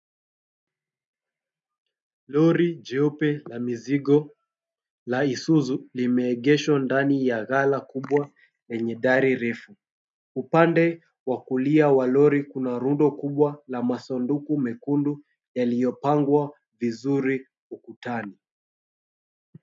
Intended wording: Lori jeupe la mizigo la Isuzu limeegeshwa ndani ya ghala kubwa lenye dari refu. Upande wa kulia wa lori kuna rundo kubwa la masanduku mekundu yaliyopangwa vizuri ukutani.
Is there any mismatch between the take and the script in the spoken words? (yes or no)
no